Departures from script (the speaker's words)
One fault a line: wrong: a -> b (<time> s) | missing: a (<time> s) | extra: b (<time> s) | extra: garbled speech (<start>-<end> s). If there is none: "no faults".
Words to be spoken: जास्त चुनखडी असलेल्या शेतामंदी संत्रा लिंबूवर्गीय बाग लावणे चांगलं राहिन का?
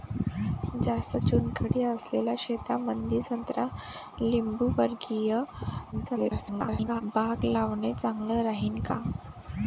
extra: garbled speech (5.9-7.0 s)